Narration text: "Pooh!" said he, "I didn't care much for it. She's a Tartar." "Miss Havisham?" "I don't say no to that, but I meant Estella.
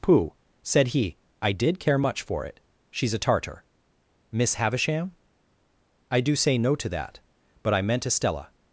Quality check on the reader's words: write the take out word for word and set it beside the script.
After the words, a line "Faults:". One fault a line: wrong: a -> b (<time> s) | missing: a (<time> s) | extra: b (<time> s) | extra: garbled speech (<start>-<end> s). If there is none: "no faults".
"Pooh!" said he, "I did care much for it. She's a Tartar." "Miss Havisham?" "I do say no to that, but I meant Estella.
Faults:
wrong: didn't -> did (1.5 s)
wrong: don't -> do (6.2 s)